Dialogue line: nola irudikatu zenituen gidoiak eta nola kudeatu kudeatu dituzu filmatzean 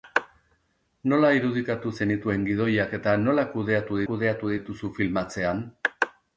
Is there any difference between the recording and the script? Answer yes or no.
no